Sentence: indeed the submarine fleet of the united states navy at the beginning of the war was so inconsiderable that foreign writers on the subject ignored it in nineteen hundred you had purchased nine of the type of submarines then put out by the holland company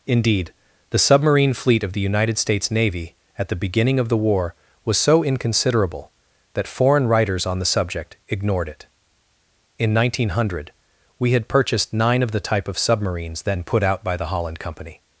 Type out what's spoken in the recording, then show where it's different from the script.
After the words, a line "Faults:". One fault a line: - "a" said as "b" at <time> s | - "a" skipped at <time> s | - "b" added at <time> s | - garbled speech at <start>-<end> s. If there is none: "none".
indeed the submarine fleet of the united states navy at the beginning of the war was so inconsiderable that foreign writers on the subject ignored it in nineteen hundred we had purchased nine of the type of submarines then put out by the holland company
Faults:
- "you" said as "we" at 11.2 s